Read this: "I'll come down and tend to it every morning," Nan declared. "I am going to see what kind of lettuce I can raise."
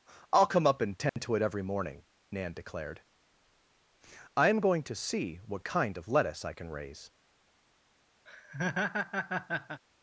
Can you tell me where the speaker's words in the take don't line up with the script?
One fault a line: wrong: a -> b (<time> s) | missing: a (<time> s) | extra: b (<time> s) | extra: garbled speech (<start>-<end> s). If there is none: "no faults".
wrong: down -> up (0.7 s)